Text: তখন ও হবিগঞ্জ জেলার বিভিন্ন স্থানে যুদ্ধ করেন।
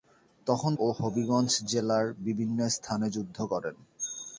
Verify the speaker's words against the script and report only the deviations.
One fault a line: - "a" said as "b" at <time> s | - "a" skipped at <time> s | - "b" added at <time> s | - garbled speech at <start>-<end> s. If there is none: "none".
none